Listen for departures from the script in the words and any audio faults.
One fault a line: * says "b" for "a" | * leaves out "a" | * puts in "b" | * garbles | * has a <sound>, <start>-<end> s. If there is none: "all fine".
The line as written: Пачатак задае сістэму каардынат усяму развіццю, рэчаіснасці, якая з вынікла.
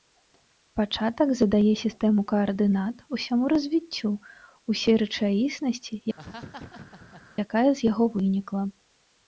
* puts in "усёй"
* has a laugh, 6.2-7.3 s
* puts in "яго"